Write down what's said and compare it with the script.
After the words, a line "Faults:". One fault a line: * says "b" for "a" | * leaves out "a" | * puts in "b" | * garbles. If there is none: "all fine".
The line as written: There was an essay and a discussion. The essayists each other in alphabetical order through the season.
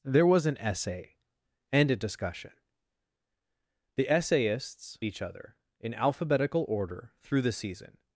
There was an essay and a discussion. The essayists each other in alphabetical order through the season.
Faults:
all fine